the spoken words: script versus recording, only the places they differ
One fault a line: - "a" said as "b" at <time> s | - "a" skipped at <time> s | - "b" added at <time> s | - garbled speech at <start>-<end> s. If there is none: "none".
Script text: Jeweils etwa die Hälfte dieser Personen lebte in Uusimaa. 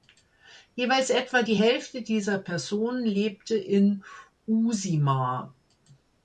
none